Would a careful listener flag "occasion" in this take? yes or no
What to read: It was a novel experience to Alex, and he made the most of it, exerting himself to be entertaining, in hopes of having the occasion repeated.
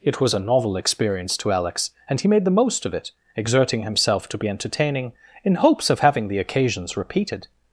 yes